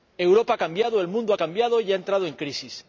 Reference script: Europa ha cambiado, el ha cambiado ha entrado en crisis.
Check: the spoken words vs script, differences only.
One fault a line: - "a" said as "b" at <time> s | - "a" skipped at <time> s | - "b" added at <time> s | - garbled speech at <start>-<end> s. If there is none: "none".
- "mundo" added at 1.1 s
- "y" added at 1.8 s